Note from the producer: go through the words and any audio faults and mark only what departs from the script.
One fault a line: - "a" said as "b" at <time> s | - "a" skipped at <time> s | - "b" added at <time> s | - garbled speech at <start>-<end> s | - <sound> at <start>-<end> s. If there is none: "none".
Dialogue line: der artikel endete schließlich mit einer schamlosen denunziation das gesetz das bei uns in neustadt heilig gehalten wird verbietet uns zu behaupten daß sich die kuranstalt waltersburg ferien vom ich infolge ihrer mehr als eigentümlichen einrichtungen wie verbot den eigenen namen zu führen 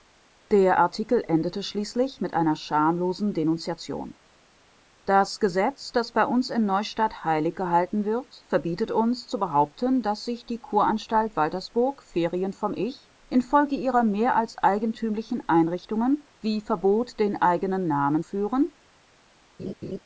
- "zu" skipped at 18.2 s
- laugh at 19.6-20.0 s